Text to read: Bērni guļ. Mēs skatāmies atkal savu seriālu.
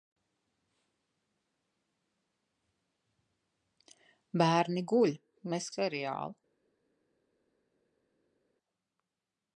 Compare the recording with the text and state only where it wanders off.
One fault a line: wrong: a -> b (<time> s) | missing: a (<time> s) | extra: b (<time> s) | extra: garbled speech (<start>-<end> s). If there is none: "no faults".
missing: skatāmies atkal savu (5.7 s)